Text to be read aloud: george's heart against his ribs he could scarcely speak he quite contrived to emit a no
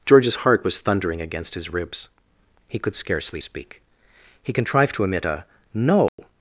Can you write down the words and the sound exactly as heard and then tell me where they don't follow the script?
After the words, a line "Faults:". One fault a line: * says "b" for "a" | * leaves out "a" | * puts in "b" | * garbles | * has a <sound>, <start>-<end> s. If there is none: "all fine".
george's heart was thundering against his ribs he could scarcely speak he contrived to emit a no
Faults:
* puts in "was thundering"
* leaves out "quite"
* has a dropout, 6.1-6.2 s